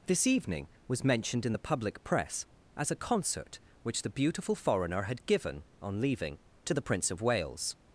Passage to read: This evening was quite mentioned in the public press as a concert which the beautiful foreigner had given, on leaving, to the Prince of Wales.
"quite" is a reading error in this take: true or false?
true